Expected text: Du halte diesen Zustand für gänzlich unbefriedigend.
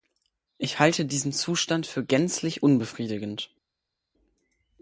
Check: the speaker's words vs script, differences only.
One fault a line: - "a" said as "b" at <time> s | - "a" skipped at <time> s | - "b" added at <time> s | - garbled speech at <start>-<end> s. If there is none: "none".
- "Du" said as "Ich" at 0.6 s